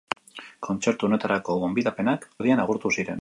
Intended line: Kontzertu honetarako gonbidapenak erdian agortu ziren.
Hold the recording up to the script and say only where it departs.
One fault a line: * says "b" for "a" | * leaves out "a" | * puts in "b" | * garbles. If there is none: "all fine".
all fine